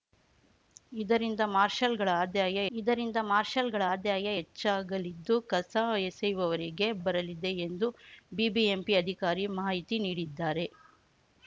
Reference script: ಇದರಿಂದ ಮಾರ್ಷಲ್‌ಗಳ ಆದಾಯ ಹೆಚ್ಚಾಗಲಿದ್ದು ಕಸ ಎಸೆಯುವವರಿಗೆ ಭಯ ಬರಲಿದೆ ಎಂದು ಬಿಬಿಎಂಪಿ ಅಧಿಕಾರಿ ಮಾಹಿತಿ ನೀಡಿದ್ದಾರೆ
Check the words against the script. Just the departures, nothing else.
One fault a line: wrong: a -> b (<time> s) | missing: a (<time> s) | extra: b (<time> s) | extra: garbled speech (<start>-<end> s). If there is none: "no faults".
extra: ಇದರಿಂದ ಮಾರ್ಷಲ್‌ಗಳ ಆದಾಯ (2.7 s)
missing: ಭಯ (6.9 s)